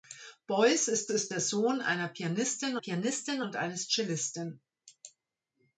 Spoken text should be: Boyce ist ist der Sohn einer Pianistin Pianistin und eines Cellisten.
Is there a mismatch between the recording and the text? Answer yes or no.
no